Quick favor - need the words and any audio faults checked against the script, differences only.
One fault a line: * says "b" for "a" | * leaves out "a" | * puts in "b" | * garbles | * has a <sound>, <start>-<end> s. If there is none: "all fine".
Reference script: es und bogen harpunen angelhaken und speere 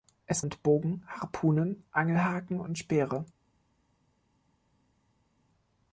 all fine